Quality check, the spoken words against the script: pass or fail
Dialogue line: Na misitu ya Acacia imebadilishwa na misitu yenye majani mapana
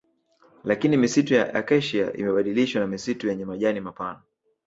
fail